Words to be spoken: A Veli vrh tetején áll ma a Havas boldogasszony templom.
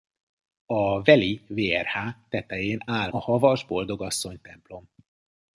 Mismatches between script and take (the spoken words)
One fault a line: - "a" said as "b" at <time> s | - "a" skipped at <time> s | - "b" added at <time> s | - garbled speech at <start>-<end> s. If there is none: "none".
- "ma" skipped at 3.1 s